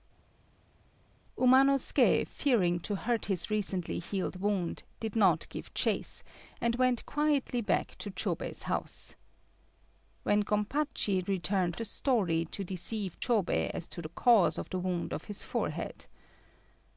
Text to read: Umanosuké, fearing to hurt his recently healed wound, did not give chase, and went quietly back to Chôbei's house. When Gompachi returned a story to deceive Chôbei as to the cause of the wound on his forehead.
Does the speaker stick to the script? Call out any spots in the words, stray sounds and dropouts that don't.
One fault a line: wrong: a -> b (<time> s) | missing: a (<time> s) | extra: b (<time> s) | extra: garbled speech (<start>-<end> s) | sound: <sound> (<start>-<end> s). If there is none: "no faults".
no faults